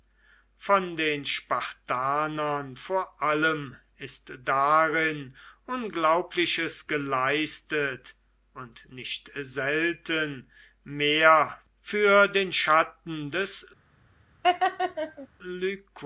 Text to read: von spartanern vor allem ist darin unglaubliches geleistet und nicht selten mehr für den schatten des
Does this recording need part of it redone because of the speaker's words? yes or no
yes